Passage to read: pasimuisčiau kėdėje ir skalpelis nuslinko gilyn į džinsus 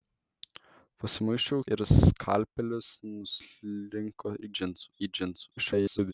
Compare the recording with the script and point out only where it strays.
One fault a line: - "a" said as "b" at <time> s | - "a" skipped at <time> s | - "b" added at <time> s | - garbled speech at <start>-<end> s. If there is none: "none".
- "kėdėje" skipped at 1.6 s
- "gilyn" said as "džinsus" at 4.6 s
- garbled speech at 5.6-6.1 s